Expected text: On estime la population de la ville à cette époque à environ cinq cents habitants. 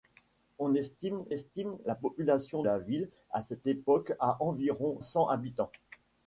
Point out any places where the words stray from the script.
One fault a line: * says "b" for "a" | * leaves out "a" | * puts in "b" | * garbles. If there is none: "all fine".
* puts in "estime"
* leaves out "de"
* leaves out "cinq"